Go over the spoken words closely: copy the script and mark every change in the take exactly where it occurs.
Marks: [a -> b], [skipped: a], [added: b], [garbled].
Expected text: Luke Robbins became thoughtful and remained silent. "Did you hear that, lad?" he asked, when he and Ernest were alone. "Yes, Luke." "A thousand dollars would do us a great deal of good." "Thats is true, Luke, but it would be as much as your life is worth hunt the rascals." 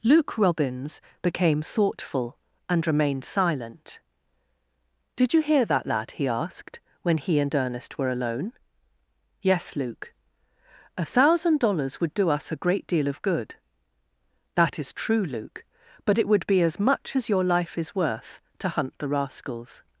Luke Robbins became thoughtful and remained silent. "Did you hear that, lad?" he asked, when he and Ernest were alone. "Yes, Luke." "A thousand dollars would do us a great deal of good." ["Thats -> That] is true, Luke, but it would be as much as your life is worth [added: to] hunt the rascals."